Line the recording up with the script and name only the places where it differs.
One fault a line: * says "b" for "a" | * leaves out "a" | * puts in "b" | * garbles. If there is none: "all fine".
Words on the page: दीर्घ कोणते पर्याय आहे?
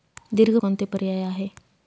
all fine